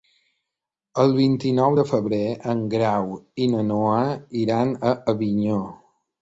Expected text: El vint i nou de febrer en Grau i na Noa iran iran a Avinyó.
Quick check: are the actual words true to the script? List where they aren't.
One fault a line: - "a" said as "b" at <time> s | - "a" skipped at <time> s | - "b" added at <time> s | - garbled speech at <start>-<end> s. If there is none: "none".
- "iran" skipped at 4.8 s